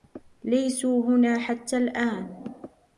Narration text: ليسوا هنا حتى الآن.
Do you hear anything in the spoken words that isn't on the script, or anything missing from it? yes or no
no